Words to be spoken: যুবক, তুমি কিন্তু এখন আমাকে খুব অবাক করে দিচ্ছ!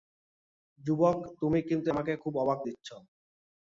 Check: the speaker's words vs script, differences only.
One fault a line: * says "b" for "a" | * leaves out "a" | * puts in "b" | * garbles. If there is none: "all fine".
* leaves out "এখন"
* leaves out "করে"